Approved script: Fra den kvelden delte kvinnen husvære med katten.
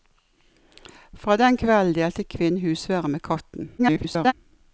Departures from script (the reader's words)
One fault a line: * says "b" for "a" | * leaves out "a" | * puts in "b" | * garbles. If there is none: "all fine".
* garbles